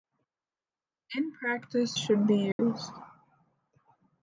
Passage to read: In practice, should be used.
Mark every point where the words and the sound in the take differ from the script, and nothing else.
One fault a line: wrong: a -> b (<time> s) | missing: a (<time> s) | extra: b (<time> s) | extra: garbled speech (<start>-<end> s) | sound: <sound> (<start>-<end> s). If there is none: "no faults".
sound: dropout (2.5-2.6 s)